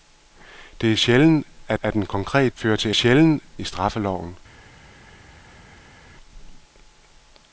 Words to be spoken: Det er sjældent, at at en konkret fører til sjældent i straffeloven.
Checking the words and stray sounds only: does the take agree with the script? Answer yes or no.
yes